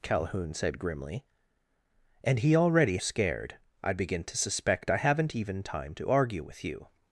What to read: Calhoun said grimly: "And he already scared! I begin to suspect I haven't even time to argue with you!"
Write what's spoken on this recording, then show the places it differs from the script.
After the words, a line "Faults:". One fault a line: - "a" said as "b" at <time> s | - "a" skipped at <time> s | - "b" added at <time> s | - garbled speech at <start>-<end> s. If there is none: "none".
Calhoun said grimly: "And he already scared! I begin to suspect I haven't even time to argue with you!"
Faults:
none